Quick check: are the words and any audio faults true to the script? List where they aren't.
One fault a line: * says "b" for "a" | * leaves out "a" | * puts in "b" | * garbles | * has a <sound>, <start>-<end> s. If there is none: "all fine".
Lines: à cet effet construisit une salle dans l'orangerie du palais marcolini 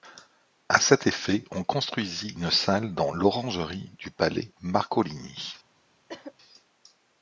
* puts in "on"
* has a cough, 6.1-6.3 s